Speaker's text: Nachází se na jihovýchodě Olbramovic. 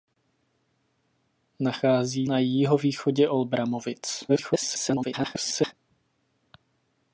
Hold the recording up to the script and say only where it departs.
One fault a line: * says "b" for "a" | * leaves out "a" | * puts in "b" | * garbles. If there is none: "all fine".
* leaves out "se"
* garbles